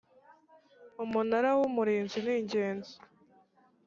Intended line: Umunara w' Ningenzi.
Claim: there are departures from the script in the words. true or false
true